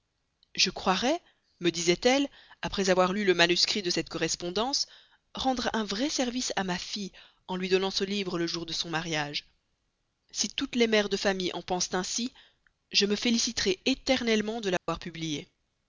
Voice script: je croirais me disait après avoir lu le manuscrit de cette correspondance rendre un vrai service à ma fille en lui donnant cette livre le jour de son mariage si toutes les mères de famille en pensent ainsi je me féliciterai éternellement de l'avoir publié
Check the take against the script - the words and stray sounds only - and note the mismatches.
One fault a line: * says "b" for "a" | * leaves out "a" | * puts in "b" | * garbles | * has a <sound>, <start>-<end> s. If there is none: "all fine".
* puts in "elle"
* says "ce" for "cette"
* has a dropout, 14.8-14.9 s